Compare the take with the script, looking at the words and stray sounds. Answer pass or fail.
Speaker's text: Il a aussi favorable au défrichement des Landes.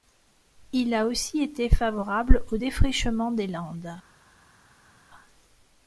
fail